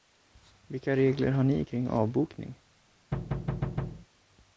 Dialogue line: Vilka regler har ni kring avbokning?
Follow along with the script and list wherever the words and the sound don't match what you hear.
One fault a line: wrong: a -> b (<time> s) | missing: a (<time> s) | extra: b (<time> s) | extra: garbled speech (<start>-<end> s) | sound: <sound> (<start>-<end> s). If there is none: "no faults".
sound: thud (3.1-4.1 s)